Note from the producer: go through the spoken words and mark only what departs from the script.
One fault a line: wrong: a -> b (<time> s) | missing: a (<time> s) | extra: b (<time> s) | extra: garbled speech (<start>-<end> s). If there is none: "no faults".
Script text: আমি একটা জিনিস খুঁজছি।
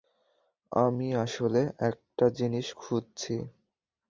extra: আসলে (1.1 s)